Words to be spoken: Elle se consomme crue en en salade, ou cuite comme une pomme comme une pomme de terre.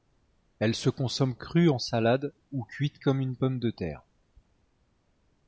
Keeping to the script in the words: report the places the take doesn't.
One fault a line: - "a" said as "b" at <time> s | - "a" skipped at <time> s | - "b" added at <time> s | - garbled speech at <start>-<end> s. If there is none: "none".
- "en" skipped at 1.8 s
- "comme une pomme" skipped at 3.6 s